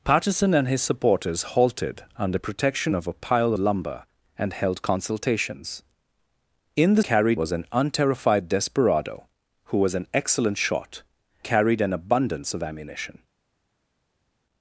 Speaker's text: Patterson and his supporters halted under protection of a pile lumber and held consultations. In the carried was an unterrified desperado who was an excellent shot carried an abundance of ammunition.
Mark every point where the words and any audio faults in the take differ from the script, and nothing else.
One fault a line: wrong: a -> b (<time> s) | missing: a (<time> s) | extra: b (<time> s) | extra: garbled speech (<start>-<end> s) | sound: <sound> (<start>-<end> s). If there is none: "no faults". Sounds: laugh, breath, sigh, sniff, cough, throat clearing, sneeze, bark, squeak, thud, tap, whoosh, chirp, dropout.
no faults